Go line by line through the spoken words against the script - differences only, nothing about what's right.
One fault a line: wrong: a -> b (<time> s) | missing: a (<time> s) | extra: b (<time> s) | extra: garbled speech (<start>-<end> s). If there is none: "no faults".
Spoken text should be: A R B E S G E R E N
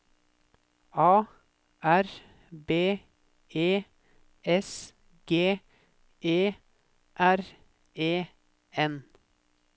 no faults